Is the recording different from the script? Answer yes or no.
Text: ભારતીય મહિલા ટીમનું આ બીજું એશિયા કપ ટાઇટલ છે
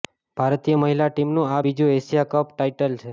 no